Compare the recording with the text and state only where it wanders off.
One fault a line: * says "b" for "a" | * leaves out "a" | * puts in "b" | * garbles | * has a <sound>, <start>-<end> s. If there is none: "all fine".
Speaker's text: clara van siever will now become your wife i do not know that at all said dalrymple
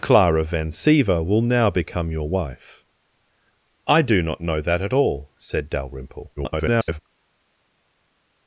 * garbles